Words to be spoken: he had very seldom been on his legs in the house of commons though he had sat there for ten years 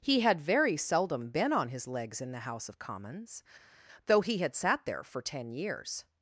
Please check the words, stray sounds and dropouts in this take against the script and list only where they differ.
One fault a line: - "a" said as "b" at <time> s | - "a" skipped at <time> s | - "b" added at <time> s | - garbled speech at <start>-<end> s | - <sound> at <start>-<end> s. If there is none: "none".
none